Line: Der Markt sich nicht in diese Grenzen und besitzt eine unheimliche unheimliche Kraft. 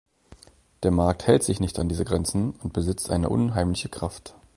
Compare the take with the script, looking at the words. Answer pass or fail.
fail